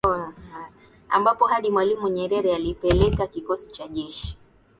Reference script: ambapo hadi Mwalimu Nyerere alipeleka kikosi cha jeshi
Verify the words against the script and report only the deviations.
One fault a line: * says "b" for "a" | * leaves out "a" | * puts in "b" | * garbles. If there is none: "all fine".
all fine